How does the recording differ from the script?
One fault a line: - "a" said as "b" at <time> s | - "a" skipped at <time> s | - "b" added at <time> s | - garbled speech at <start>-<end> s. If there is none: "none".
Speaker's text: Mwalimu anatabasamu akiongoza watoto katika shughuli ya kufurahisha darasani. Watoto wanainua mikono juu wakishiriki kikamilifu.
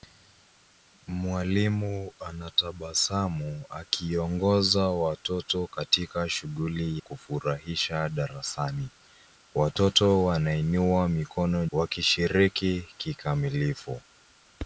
- "ya" skipped at 7.0 s
- "juu" skipped at 11.7 s